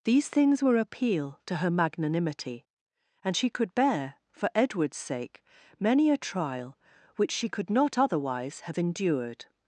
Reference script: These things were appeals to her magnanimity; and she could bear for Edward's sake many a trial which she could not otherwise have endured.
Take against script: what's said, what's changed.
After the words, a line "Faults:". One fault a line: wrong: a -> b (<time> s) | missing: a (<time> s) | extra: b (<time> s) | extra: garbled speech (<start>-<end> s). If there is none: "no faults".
These things were appeal to her magnanimity; and she could bear for Edward's sake many a trial which she could not otherwise have endured.
Faults:
wrong: appeals -> appeal (0.8 s)